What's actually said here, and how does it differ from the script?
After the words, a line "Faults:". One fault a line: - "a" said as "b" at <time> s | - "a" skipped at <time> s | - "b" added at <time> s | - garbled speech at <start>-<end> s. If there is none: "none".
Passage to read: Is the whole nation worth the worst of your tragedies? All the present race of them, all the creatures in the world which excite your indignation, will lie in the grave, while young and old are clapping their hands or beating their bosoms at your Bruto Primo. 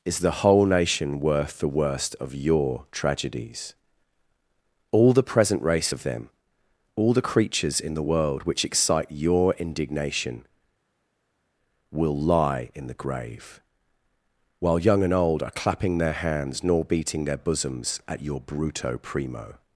Is the whole nation worth the worst of your tragedies? All the present race of them, all the creatures in the world which excite your indignation, will lie in the grave, while young and old are clapping their hands nor beating their bosoms at your Bruto Primo.
Faults:
- "or" said as "nor" at 16.6 s